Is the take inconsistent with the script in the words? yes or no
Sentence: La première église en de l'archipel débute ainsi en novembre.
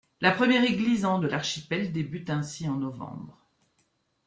no